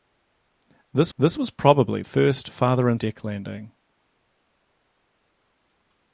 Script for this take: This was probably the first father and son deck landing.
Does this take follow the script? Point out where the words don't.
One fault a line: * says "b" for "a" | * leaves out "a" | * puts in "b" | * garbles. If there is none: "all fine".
* puts in "this"
* leaves out "the"
* leaves out "son"